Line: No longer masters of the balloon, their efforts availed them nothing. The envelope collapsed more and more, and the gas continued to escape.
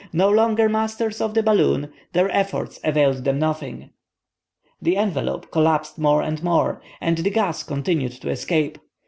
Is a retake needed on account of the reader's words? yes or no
no